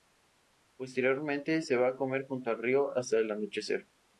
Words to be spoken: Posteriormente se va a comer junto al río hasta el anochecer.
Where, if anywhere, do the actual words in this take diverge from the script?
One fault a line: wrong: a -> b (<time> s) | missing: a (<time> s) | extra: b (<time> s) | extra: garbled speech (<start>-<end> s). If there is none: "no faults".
no faults